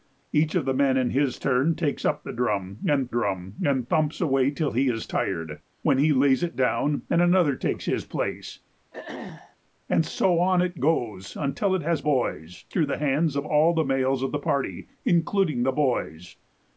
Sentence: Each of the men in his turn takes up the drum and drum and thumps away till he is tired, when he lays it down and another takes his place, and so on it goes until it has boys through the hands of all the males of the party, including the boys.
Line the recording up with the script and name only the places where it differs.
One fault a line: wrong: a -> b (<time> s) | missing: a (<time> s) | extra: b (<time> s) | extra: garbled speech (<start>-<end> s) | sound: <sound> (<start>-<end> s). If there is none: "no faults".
sound: throat clearing (8.9-9.6 s)